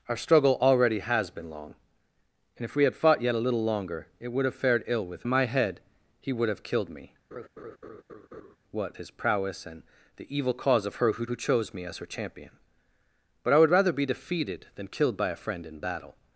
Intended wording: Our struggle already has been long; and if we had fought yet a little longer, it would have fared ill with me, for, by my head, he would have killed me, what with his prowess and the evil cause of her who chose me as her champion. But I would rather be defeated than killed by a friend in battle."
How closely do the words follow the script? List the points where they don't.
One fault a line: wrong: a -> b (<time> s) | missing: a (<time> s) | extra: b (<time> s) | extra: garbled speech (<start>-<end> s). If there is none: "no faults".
missing: me for by (5.3 s)
missing: with (8.9 s)
extra: who (11.2 s)